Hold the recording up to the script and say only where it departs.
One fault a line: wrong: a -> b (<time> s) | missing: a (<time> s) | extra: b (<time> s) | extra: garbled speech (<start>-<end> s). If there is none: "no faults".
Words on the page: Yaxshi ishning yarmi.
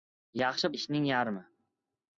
no faults